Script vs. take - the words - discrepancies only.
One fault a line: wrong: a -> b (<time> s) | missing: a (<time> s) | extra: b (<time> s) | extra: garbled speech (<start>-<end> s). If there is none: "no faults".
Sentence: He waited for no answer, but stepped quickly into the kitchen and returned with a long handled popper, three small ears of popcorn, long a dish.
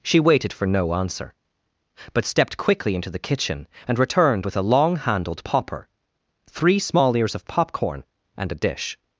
wrong: He -> She (0.0 s)
wrong: long -> and (8.4 s)